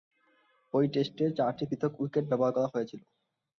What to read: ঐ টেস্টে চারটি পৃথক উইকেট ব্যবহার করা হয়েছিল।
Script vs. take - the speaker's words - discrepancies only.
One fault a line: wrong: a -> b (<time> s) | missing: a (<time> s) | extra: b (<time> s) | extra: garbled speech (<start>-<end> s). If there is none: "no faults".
no faults